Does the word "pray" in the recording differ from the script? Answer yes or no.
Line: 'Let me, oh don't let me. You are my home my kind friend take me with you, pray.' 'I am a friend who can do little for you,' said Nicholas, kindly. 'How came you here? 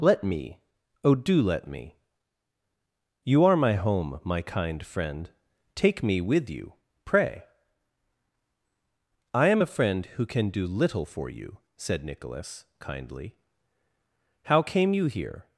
no